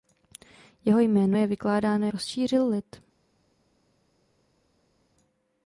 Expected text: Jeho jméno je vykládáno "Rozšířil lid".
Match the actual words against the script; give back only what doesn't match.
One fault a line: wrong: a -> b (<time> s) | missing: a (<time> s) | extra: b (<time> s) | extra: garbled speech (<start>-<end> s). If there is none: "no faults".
no faults